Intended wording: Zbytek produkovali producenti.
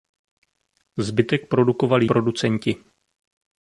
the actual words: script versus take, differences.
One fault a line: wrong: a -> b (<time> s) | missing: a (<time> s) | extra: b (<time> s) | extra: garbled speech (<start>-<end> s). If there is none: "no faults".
no faults